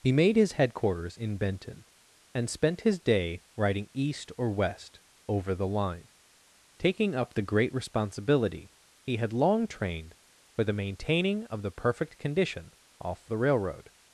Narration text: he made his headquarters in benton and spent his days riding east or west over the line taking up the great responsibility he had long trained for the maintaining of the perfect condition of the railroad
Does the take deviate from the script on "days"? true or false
true